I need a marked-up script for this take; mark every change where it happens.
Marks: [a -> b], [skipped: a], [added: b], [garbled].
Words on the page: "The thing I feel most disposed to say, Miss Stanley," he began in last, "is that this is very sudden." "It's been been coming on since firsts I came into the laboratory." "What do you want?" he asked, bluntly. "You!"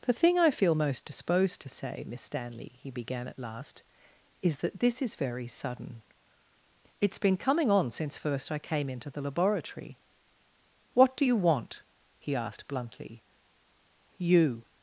"The thing I feel most disposed to say, Miss Stanley," he began [in -> at] last, "is that this is very sudden." "It's been [skipped: been] coming on since [firsts -> first] I came into the laboratory." "What do you want?" he asked, bluntly. "You!"